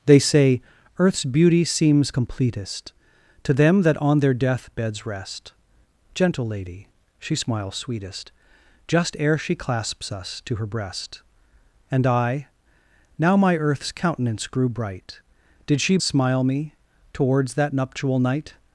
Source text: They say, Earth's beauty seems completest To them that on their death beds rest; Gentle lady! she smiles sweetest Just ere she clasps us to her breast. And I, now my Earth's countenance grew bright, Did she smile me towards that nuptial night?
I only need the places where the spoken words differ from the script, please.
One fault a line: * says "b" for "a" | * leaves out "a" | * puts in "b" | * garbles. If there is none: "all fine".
all fine